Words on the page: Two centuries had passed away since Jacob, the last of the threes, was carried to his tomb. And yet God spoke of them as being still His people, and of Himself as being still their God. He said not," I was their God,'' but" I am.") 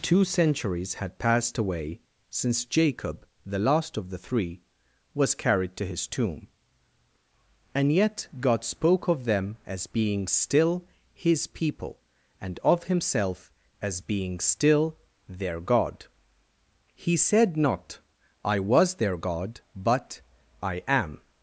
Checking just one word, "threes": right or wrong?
wrong